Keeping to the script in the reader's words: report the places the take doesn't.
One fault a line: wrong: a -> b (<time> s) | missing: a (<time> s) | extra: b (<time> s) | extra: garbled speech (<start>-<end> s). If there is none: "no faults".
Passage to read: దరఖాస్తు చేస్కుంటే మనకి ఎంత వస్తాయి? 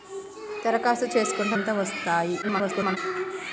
missing: మనకి (1.6 s)
extra: garbled speech (2.4-3.0 s)